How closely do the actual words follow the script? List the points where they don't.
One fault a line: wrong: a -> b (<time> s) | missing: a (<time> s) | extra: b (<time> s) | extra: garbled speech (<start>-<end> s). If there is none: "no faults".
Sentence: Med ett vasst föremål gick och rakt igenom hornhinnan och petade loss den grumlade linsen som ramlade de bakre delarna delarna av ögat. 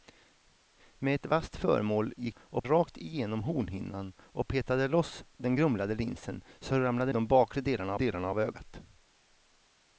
no faults